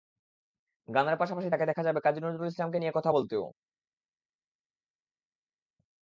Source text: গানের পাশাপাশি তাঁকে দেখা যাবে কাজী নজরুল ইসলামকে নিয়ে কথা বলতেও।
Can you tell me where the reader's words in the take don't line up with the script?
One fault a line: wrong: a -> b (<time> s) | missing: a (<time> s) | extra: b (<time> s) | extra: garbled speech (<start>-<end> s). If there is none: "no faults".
no faults